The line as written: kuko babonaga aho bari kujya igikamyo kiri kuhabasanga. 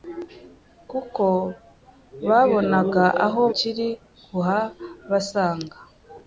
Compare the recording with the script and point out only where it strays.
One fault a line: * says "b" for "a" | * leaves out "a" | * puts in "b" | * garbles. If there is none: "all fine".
* leaves out "bari kujya igikamyo"